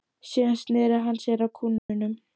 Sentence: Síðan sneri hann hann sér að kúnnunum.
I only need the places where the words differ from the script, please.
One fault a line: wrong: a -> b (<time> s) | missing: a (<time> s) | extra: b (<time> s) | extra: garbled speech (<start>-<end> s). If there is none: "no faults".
missing: hann (1.2 s)